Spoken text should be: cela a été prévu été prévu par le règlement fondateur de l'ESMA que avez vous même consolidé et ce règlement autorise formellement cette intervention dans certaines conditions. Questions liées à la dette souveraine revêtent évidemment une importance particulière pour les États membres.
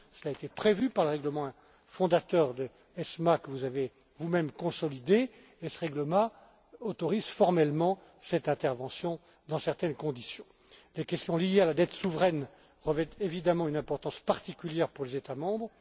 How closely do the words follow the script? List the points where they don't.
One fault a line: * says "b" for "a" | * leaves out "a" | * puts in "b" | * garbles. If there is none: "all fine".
* leaves out "été prévu"
* puts in "vous"
* puts in "Les"